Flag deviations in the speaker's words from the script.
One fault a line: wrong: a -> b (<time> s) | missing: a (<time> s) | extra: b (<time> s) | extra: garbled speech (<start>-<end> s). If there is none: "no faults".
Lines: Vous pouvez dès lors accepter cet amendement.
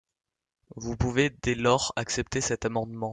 no faults